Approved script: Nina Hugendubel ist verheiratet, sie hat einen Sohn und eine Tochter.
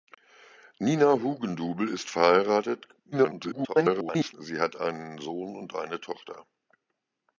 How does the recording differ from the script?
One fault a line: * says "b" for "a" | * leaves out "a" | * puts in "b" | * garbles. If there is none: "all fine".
* garbles